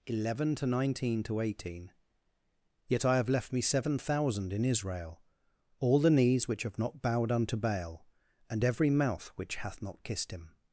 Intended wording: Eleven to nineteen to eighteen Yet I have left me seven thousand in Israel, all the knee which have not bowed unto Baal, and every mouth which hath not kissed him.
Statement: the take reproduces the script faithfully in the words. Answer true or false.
false